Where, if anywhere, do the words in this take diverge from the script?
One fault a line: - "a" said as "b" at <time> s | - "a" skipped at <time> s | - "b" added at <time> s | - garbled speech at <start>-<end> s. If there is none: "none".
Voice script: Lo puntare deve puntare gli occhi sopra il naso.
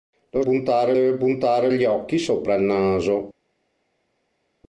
none